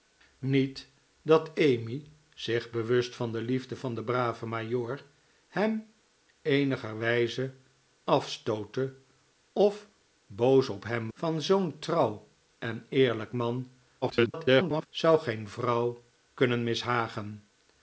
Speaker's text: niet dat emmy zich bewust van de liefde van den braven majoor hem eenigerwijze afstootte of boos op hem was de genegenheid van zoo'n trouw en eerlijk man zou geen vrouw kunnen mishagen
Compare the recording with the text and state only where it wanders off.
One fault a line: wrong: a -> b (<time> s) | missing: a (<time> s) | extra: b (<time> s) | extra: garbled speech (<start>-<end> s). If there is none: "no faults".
missing: was de genegenheid (11.1 s)
extra: garbled speech (14.0-14.9 s)